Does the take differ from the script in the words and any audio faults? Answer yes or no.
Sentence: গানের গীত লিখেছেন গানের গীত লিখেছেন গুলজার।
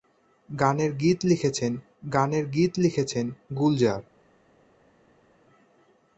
no